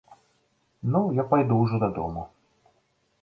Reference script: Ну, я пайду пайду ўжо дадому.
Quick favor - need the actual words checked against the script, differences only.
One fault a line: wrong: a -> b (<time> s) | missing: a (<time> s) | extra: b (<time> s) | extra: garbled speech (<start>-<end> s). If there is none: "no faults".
missing: пайду (1.6 s)